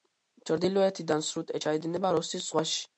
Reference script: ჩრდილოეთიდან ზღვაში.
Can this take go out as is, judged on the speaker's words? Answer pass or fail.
fail